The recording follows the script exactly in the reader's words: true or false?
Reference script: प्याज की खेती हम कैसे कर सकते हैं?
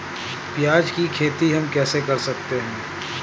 true